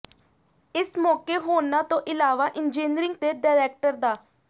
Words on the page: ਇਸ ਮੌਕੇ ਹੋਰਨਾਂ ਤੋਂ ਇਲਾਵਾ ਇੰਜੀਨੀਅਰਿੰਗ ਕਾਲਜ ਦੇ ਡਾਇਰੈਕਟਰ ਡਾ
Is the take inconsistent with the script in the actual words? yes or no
yes